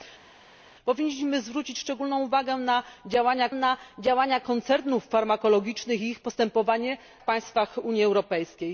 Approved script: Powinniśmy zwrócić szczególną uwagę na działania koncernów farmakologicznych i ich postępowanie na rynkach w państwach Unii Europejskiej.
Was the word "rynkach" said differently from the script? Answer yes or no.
yes